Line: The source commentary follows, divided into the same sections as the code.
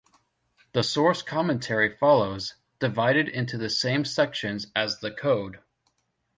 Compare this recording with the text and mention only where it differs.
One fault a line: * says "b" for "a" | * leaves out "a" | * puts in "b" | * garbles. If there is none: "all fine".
all fine